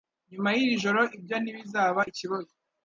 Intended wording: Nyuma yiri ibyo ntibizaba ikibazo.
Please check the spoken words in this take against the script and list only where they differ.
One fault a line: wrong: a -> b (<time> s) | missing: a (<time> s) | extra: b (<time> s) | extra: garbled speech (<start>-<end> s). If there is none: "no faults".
extra: joro (0.8 s)